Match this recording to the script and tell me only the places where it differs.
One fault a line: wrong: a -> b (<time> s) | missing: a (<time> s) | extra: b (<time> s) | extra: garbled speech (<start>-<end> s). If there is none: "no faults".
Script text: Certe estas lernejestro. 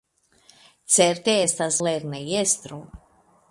no faults